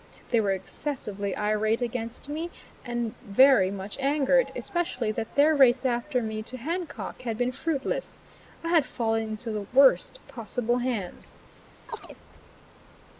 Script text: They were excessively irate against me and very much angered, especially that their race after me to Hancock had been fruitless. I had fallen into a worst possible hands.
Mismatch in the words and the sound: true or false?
true